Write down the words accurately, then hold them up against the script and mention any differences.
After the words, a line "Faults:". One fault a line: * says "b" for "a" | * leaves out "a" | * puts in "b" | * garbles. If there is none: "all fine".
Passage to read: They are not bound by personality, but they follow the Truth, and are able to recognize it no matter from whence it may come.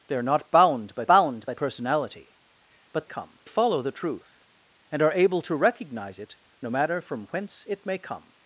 They are not bound by bound by personality, but come follow the Truth, and are able to recognize it no matter from whence it may come.
Faults:
* puts in "bound by"
* says "come" for "they"